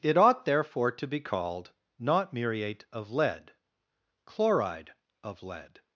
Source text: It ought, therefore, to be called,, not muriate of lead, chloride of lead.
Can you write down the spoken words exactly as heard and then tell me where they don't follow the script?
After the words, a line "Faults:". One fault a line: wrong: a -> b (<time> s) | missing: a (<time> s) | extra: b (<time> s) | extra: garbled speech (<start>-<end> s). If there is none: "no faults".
It ought, therefore, to be called,, not muriate of lead, chloride of lead.
Faults:
no faults